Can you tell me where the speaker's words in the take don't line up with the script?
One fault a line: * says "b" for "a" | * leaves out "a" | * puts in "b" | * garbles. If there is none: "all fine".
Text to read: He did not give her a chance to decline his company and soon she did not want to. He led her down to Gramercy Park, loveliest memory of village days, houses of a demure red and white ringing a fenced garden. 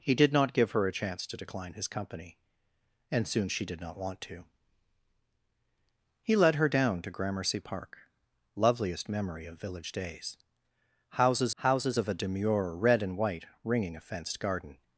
* puts in "houses"